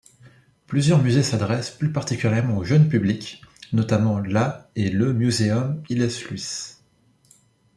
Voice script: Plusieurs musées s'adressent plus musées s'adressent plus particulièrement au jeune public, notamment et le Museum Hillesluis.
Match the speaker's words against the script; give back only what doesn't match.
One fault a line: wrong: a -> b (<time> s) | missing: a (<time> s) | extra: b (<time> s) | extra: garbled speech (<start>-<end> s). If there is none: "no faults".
missing: musées s'adressent plus (1.9 s)
extra: la (4.2 s)